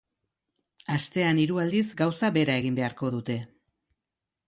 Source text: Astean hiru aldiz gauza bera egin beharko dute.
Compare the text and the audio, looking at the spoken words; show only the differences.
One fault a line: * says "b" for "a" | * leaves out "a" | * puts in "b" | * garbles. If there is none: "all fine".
all fine